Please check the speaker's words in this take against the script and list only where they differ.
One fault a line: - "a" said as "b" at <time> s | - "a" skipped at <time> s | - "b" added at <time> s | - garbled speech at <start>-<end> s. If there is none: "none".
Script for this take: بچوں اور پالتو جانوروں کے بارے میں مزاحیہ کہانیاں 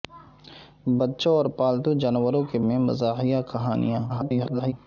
- "بارے" skipped at 2.6 s
- garbled speech at 4.1-4.7 s